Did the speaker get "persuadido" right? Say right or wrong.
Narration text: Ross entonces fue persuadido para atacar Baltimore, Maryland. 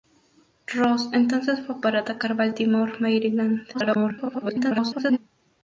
wrong